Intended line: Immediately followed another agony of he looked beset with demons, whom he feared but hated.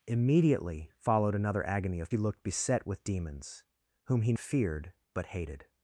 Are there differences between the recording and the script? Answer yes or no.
no